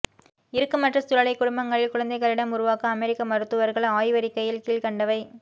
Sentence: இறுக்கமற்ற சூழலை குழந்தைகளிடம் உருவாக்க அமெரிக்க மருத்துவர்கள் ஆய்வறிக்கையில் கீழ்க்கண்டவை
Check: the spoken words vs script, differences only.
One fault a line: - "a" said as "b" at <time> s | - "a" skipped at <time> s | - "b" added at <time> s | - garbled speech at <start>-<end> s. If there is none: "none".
- "குடும்பங்களில்" added at 1.3 s